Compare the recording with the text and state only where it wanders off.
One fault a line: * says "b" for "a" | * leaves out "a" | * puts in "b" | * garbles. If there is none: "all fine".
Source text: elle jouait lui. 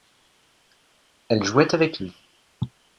* puts in "avec"